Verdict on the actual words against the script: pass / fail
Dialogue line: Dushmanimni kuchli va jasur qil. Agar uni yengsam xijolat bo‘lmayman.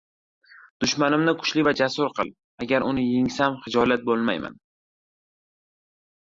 pass